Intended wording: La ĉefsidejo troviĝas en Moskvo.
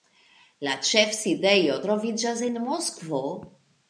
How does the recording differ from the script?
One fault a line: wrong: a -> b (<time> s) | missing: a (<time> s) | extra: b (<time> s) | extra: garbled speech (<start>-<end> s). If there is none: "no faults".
no faults